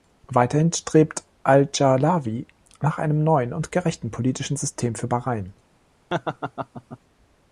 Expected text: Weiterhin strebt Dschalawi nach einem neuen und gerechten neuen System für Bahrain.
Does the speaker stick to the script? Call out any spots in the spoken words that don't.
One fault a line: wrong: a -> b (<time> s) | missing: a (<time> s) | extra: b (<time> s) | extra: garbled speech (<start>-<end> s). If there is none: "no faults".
extra: al (1.4 s)
wrong: neuen -> politischen (4.1 s)